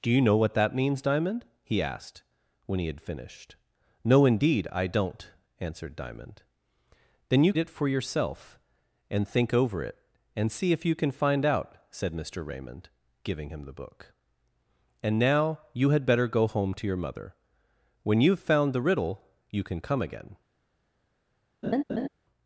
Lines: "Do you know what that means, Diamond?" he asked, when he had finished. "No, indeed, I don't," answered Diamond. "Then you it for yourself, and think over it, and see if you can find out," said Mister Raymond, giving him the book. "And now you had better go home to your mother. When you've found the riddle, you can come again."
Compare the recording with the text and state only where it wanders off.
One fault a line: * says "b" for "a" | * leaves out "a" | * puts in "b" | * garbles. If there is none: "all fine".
all fine